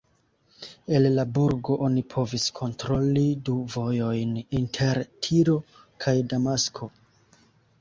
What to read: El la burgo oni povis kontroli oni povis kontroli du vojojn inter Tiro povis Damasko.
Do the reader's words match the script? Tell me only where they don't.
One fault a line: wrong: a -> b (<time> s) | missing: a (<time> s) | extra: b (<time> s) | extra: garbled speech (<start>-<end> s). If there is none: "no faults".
missing: oni povis kontroli (3.2 s)
wrong: povis -> kaj (6.1 s)